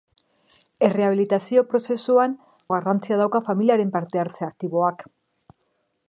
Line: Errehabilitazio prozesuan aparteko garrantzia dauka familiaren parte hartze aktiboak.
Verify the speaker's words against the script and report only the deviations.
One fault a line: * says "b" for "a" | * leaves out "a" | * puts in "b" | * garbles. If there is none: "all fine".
* leaves out "aparteko"